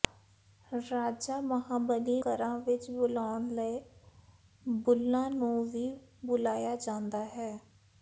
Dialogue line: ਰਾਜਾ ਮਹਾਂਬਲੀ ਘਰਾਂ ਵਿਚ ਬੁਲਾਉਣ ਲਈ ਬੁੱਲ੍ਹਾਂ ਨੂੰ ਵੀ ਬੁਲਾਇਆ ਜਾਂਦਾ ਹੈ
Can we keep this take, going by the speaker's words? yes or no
yes